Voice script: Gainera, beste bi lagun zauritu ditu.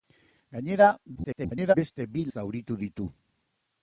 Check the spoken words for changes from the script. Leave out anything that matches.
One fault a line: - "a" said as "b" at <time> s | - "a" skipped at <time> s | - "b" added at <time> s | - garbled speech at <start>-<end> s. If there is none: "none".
- garbled speech at 1.2-1.7 s
- "lagun" skipped at 2.3 s